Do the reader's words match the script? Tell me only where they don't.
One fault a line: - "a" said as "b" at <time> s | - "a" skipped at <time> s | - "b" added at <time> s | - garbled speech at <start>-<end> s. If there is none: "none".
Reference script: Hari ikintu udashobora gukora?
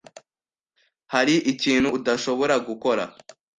none